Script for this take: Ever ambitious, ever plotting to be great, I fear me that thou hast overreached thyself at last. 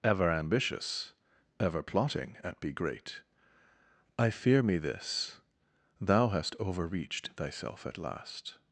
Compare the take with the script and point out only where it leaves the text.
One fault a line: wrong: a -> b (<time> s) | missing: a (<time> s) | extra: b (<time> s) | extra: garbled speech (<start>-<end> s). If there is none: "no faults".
wrong: to -> at (2.4 s)
wrong: that -> this (4.8 s)